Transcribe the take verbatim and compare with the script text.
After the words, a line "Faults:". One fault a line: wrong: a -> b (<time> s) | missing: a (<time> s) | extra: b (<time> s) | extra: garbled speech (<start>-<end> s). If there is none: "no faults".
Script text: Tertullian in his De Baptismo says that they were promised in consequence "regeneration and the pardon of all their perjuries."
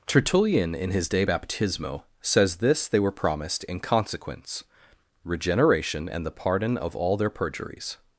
Tertullian in his De Baptismo says this they were promised in consequence "regeneration and the pardon of all their perjuries."
Faults:
wrong: that -> this (2.6 s)